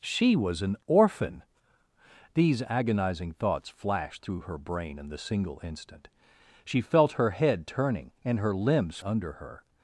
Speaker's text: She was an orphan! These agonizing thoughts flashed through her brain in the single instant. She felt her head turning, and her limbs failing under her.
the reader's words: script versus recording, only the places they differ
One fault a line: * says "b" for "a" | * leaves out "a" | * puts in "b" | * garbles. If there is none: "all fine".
* leaves out "failing"